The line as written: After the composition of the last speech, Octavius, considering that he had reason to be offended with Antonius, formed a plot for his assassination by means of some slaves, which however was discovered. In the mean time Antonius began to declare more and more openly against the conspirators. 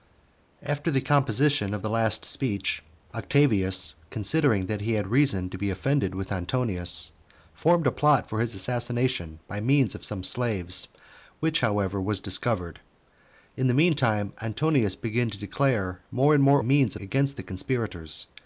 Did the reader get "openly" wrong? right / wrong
wrong